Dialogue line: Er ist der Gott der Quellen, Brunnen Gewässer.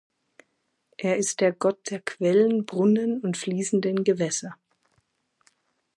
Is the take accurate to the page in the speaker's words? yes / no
no